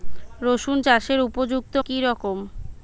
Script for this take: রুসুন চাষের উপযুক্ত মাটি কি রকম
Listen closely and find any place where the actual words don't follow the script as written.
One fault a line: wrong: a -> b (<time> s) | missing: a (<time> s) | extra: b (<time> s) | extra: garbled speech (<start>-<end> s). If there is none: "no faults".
missing: মাটি (1.7 s)